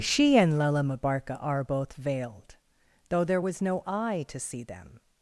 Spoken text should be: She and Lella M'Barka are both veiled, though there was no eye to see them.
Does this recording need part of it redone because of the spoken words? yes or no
no